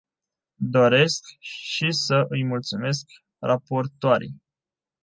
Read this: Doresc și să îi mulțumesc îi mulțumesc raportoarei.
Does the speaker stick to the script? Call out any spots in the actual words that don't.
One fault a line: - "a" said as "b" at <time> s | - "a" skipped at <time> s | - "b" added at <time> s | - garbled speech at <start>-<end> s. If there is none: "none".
- "îi mulțumesc" skipped at 3.0 s